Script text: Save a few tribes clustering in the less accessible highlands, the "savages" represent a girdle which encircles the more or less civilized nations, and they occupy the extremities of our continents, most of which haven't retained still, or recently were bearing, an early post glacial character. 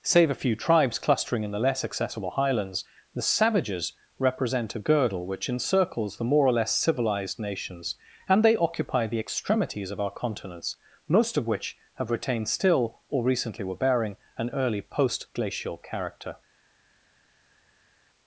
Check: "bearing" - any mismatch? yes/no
no